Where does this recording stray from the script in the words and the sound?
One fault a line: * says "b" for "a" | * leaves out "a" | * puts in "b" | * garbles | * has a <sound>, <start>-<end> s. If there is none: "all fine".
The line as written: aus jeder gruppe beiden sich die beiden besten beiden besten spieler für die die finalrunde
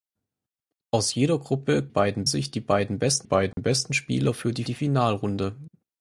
* has a dropout, 3.5-3.6 s